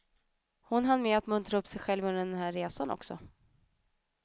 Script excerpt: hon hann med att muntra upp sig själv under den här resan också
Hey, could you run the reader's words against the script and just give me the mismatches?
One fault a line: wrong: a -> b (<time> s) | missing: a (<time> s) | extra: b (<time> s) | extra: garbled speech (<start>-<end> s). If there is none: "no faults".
no faults